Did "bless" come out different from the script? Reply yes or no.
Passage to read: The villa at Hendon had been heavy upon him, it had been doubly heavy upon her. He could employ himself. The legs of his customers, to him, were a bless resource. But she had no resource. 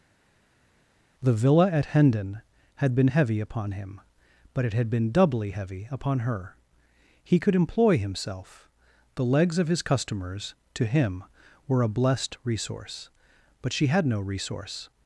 yes